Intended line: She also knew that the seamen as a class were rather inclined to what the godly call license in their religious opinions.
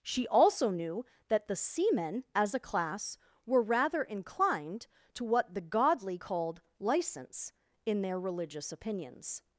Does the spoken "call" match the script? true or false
false